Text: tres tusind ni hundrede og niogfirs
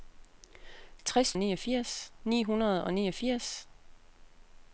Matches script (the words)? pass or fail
fail